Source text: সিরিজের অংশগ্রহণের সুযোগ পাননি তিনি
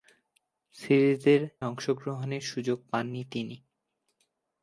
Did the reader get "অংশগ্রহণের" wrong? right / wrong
right